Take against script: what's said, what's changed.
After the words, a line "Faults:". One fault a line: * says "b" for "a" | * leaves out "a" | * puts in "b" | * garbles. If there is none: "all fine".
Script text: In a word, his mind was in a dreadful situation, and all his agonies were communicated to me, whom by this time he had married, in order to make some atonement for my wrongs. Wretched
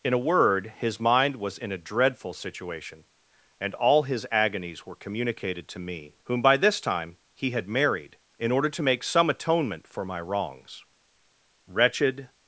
In a word, his mind was in a dreadful situation, and all his agonies were communicated to me, whom by this time he had married, in order to make some atonement for my wrongs. Wretched
Faults:
all fine